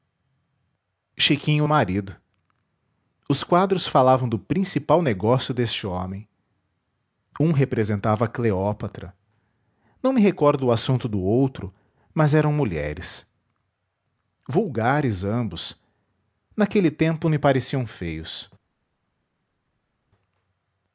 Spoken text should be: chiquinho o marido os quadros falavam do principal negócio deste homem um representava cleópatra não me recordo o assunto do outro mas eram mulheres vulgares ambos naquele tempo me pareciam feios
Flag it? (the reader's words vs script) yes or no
no